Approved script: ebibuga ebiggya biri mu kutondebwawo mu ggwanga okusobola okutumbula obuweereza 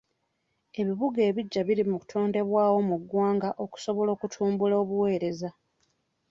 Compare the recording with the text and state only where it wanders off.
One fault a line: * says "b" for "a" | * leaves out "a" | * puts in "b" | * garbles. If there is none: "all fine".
all fine